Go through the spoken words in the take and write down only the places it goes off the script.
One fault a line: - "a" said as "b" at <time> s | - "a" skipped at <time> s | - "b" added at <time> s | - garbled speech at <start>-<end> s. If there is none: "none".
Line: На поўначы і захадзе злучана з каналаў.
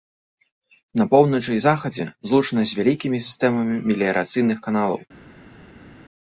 - "вялікімі сістэмамі меліярацыйных" added at 2.8 s